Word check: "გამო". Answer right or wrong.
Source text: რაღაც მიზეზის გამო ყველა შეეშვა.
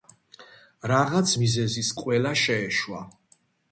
wrong